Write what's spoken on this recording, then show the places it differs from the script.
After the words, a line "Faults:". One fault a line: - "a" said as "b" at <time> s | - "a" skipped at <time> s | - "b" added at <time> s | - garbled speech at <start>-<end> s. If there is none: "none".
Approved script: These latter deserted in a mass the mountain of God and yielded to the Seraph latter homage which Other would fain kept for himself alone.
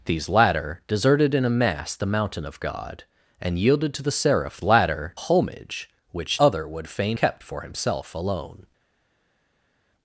These latter deserted in a mass the mountain of God and yielded to the Seraph latter homage which Other would fain kept for himself alone.
Faults:
none